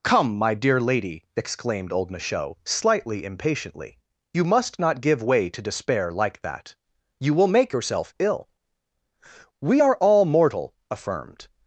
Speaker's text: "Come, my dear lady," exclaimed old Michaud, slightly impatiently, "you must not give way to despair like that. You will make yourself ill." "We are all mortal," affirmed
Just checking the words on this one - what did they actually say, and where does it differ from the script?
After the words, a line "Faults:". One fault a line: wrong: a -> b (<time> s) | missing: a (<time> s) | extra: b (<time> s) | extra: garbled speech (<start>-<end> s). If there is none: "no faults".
"Come, my dear lady," exclaimed old Michaud, slightly impatiently, "you must not give way to despair like that. You will make yourself ill." "We are all mortal," affirmed
Faults:
no faults